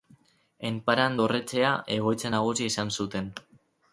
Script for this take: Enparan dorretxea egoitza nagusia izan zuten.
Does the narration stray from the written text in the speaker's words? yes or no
no